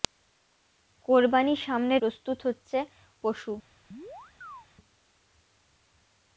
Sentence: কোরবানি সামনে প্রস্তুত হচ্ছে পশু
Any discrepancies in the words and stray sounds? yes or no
yes